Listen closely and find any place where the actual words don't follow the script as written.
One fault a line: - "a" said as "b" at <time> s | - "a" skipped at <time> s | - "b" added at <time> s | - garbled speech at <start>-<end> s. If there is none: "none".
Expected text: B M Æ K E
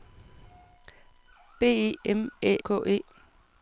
none